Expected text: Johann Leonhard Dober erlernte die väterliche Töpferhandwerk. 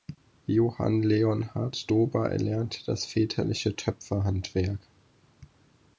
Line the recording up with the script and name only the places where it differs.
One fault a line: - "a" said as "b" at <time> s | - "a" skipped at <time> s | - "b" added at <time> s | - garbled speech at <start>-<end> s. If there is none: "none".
- "die" said as "das" at 2.8 s